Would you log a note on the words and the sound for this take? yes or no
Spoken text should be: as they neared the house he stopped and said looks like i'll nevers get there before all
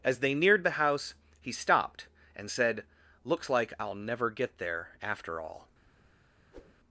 yes